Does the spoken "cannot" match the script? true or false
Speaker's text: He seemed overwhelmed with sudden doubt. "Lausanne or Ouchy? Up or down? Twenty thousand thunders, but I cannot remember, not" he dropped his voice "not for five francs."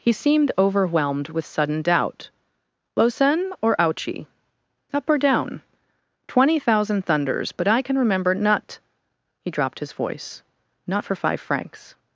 false